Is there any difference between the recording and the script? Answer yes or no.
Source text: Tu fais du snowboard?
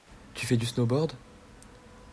no